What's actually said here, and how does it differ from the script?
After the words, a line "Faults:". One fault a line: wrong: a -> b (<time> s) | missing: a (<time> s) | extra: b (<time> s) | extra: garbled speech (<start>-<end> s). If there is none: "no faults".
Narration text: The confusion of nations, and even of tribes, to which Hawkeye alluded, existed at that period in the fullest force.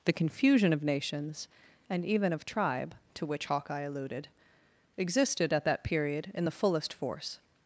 The confusion of nations, and even of tribe, to which Hawkeye alluded, existed at that period in the fullest force.
Faults:
wrong: tribes -> tribe (2.5 s)